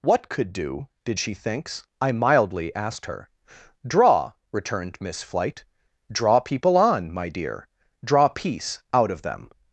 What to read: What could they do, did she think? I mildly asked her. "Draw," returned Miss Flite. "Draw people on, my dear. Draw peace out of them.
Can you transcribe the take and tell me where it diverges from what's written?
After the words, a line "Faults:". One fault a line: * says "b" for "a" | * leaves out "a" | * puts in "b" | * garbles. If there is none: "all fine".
What could do, did she thinks? I mildly asked her. "Draw," returned Miss Flite. "Draw people on, my dear. Draw peace out of them.
Faults:
* leaves out "they"
* says "thinks" for "think"